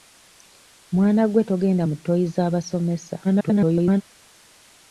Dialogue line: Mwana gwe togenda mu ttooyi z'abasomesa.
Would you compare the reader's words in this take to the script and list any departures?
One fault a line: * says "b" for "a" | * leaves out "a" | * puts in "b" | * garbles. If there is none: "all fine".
* garbles